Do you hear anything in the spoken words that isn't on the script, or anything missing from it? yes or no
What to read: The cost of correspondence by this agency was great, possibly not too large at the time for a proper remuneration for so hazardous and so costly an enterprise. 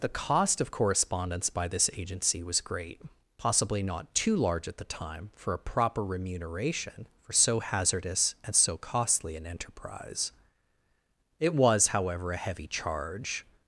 yes